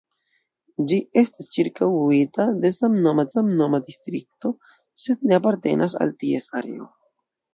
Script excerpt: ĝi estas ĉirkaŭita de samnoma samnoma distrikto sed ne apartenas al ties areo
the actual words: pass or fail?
pass